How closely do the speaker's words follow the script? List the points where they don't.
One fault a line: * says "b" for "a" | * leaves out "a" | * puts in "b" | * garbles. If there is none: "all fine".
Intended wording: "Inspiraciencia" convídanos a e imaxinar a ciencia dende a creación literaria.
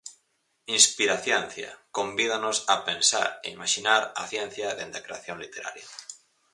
* puts in "pensar"